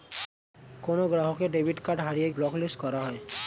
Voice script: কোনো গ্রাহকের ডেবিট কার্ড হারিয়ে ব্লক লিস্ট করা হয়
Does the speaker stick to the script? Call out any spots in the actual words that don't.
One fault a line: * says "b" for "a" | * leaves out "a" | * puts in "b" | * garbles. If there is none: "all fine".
all fine